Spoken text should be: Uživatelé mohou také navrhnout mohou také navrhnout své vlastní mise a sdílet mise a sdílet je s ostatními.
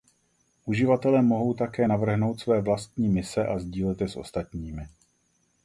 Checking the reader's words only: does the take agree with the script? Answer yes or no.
no